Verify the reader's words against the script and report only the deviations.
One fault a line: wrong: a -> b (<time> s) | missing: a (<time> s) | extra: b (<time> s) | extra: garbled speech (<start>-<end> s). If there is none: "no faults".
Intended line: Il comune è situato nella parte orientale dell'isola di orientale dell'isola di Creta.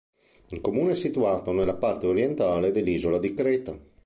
missing: orientale dell'isola di (3.3 s)